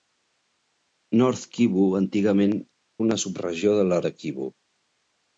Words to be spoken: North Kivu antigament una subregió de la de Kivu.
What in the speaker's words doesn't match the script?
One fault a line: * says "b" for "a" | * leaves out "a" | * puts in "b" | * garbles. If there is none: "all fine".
all fine